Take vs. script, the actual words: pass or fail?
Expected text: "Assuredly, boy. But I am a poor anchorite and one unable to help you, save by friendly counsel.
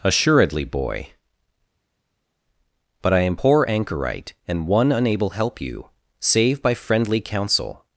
fail